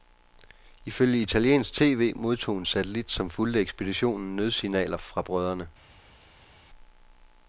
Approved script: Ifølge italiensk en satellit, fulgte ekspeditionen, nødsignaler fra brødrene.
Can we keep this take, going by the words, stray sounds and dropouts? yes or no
no